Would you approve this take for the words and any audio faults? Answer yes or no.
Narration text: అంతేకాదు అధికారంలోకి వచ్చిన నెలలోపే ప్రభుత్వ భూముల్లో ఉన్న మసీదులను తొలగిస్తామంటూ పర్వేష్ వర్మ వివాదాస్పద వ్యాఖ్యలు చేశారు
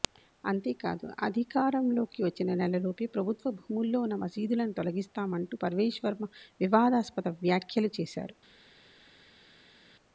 yes